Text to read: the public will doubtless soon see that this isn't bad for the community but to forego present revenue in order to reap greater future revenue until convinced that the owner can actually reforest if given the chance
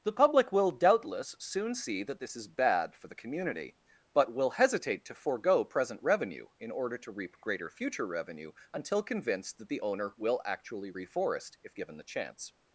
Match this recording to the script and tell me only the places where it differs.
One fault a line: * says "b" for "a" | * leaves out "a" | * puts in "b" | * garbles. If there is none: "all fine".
* says "is" for "isn't"
* puts in "will hesitate"
* says "will" for "can"